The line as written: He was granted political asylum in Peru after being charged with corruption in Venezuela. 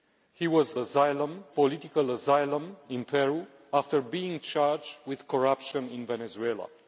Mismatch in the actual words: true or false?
true